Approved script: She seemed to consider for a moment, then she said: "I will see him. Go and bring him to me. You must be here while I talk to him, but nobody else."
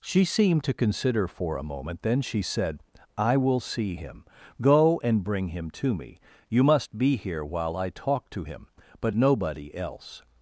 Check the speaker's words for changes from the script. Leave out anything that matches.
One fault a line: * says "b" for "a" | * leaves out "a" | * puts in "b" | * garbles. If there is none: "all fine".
all fine